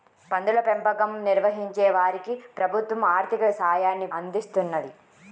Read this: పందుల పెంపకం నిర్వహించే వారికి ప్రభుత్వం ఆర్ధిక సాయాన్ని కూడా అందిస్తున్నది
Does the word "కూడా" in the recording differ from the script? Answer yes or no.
yes